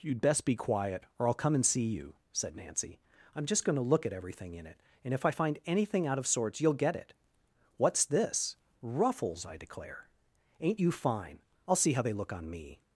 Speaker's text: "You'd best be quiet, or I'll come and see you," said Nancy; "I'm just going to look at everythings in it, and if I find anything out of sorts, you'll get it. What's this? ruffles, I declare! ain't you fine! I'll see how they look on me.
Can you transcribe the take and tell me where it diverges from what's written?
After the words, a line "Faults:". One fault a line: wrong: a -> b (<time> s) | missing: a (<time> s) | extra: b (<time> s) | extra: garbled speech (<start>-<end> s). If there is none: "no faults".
"You'd best be quiet, or I'll come and see you," said Nancy; "I'm just going to look at everything in it, and if I find anything out of sorts, you'll get it. What's this? ruffles, I declare! ain't you fine! I'll see how they look on me.
Faults:
wrong: everythings -> everything (4.1 s)